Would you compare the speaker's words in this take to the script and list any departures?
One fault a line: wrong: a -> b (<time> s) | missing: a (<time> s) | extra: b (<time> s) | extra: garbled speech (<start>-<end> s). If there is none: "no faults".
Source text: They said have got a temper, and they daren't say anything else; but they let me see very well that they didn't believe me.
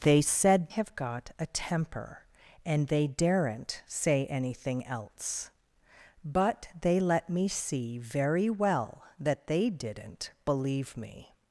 no faults